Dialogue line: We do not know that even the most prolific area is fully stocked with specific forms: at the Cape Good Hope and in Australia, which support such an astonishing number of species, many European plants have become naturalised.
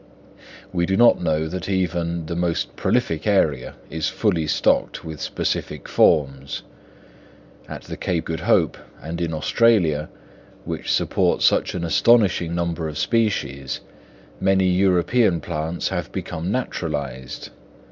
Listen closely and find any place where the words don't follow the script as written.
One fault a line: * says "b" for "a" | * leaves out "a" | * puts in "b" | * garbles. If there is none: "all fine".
all fine